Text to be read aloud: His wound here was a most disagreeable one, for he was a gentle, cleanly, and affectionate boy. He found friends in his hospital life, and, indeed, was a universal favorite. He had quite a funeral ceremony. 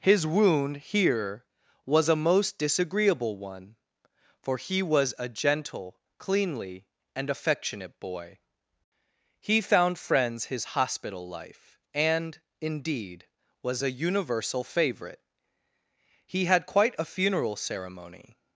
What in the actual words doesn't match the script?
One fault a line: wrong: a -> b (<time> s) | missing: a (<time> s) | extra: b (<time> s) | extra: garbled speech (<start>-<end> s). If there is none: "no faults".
missing: in (10.4 s)